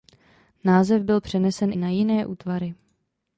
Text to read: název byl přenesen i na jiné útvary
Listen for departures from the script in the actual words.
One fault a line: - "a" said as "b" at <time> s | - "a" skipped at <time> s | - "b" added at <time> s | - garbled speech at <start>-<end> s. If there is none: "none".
none